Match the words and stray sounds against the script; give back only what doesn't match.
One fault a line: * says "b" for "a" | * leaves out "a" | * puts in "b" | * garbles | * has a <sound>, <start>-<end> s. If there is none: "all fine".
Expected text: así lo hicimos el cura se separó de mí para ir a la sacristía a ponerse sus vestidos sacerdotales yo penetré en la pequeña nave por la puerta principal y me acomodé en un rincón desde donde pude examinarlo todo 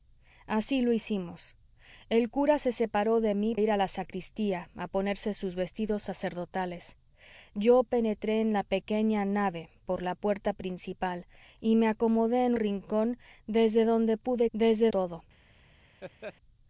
* leaves out "para"
* leaves out "un"
* says "desde" for "examinarlo"
* has a laugh, 16.0-16.3 s